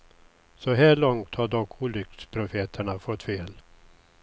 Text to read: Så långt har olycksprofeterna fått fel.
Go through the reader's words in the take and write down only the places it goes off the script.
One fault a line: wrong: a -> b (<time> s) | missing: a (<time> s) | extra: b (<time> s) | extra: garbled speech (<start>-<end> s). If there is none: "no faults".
extra: här (0.7 s)
extra: dock (1.5 s)